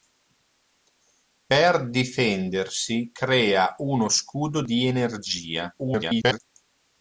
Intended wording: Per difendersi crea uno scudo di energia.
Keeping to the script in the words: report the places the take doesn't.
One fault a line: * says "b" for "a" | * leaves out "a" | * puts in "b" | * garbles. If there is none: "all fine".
* garbles